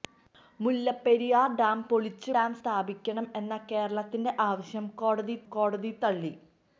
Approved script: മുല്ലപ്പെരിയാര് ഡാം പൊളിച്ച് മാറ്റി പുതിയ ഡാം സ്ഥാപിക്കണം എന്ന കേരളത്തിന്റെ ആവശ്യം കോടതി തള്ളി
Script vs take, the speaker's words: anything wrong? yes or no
yes